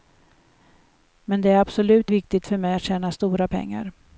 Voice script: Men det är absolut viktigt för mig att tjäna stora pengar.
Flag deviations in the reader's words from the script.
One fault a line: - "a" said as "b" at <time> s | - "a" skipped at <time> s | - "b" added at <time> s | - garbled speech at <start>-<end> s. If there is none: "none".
none